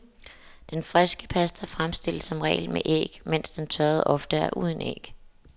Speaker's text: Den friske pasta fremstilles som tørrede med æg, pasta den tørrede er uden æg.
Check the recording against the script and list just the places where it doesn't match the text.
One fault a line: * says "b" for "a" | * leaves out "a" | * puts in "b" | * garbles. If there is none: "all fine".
* says "regel" for "tørrede"
* says "mens" for "pasta"
* puts in "ofte"